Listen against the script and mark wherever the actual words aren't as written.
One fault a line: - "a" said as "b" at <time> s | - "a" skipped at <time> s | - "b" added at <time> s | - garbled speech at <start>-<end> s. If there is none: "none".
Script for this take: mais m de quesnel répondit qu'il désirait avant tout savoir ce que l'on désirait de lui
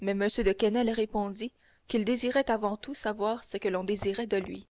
none